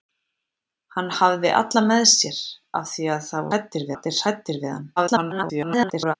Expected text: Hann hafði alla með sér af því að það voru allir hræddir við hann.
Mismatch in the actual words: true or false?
true